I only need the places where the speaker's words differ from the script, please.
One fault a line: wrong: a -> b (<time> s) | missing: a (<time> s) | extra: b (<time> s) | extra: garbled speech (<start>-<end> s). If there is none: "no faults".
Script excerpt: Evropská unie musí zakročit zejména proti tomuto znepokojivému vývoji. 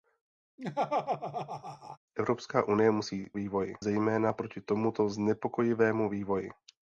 wrong: zakročit -> vývoji (3.3 s)